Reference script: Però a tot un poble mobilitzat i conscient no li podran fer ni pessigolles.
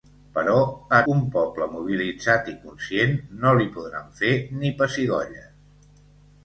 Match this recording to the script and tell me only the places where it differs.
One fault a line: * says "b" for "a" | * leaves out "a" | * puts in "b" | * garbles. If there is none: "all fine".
* leaves out "tot"